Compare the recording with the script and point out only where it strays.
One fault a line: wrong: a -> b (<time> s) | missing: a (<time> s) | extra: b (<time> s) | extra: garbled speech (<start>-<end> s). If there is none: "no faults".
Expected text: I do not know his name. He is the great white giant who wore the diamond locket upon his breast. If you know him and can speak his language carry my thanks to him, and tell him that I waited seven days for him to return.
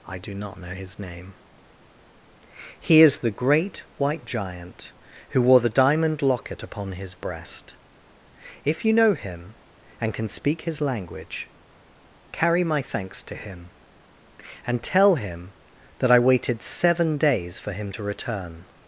no faults